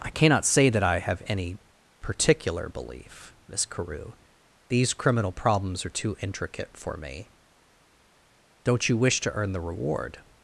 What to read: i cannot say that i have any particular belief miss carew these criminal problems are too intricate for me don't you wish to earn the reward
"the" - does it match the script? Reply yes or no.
yes